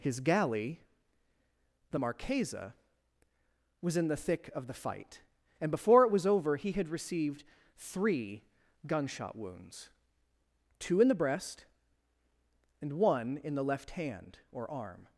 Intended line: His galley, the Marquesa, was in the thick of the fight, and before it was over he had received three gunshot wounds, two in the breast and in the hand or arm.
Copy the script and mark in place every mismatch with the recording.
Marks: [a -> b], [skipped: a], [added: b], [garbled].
His galley, the Marquesa, was in the thick of the fight, and before it was over he had received three gunshot wounds, two in the breast and [added: one] in the [added: left] hand or arm.